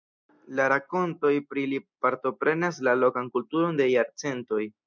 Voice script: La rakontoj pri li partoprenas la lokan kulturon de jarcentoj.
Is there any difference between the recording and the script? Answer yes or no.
no